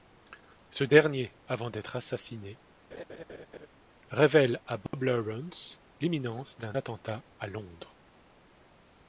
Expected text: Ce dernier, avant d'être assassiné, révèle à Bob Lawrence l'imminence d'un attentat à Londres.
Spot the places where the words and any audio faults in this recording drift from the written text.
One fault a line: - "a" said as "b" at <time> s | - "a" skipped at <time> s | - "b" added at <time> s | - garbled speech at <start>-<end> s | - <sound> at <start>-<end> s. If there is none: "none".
- laugh at 2.9-3.7 s
- dropout at 4.9-4.9 s